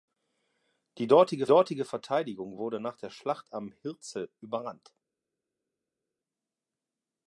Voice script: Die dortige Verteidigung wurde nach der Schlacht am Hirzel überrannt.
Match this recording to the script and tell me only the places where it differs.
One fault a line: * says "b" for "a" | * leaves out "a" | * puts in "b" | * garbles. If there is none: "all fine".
* puts in "dortige"